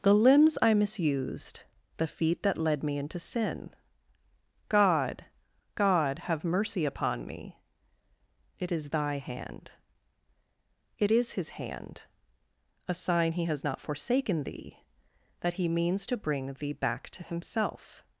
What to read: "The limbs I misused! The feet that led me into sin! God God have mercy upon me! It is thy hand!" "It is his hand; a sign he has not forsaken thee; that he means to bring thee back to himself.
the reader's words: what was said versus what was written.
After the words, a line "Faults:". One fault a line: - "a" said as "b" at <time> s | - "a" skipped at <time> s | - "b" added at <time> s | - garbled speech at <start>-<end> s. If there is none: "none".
"The limbs I misused! The feet that led me into sin! God God have mercy upon me! It is thy hand!" "It is his hand; a sign he has not forsaken thee; that he means to bring thee back to himself.
Faults:
none